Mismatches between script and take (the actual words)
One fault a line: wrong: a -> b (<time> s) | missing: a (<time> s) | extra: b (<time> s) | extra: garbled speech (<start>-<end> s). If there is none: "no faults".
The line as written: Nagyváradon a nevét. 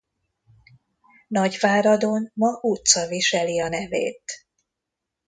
extra: ma utca viseli (2.3 s)